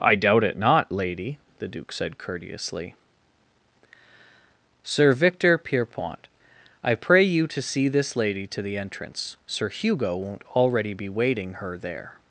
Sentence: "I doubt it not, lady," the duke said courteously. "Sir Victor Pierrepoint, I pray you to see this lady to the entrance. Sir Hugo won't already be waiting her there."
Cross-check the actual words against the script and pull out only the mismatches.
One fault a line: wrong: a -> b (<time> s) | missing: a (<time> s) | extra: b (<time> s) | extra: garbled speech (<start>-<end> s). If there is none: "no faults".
no faults